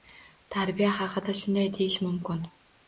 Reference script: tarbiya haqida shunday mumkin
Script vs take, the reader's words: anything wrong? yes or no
yes